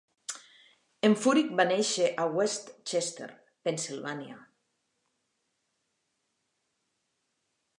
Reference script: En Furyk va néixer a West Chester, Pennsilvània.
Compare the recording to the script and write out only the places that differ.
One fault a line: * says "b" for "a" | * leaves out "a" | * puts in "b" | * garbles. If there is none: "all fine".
all fine